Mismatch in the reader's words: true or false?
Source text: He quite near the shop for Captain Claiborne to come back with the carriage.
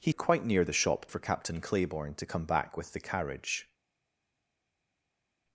false